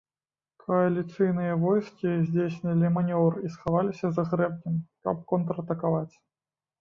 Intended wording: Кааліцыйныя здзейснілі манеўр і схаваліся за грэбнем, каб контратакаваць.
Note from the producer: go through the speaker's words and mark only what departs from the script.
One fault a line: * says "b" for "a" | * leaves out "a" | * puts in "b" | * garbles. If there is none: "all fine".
* puts in "войскі"